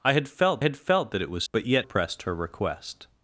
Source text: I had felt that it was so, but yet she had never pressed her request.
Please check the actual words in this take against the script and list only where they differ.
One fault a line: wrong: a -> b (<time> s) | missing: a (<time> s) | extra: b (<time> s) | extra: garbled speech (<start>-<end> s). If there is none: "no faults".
extra: had felt (0.6 s)
missing: so (1.4 s)
missing: she had never (1.9 s)